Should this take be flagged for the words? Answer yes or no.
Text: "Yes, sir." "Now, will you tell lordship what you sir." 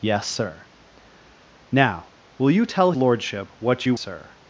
no